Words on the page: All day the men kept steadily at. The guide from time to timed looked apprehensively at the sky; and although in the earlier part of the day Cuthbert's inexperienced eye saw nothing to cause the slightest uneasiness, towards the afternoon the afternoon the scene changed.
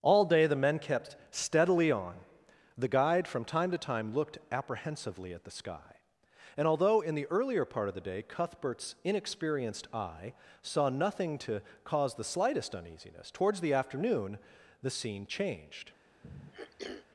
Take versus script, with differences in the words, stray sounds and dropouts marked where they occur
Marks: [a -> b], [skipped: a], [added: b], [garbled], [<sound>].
All day the men kept steadily [at. -> on] The guide from time to [timed -> time] looked apprehensively at the sky; and although in the earlier part of the day Cuthbert's inexperienced eye saw nothing to cause the slightest uneasiness, towards the afternoon the [skipped: afternoon the] scene changed. [throat clearing]